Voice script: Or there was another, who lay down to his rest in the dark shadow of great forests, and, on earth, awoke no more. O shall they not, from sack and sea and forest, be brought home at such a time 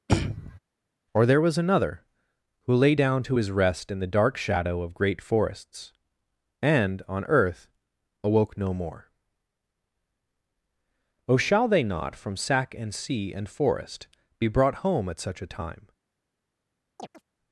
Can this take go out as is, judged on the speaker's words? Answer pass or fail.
pass